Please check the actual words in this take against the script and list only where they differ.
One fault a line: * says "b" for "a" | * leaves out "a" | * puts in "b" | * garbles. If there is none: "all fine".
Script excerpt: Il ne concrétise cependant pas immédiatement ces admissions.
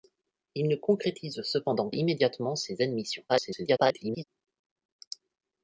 * leaves out "pas"
* garbles